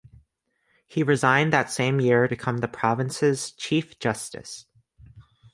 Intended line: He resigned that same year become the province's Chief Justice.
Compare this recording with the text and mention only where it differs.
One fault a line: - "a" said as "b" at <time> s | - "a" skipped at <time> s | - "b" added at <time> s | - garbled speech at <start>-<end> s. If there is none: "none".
none